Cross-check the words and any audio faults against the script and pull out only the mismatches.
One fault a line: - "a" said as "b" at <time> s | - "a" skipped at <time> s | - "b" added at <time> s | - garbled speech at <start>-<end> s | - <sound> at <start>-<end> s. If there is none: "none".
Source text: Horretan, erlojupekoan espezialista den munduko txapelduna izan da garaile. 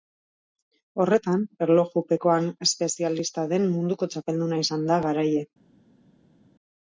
none